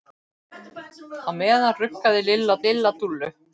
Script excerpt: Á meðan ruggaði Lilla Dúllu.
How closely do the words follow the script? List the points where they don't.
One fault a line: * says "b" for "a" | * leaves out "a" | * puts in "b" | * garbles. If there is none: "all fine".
* puts in "Lilla"